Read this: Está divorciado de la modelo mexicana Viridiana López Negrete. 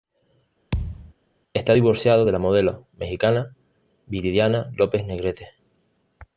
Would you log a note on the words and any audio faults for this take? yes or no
yes